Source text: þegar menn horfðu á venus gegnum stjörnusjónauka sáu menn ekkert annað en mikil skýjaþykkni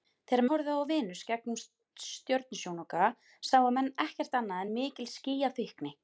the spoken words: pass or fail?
fail